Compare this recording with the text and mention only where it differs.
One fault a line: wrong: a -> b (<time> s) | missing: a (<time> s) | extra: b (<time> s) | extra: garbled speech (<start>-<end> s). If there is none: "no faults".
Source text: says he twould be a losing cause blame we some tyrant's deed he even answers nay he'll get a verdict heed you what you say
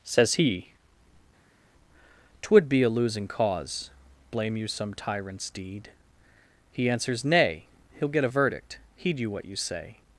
wrong: we -> you (4.6 s)
missing: even (6.9 s)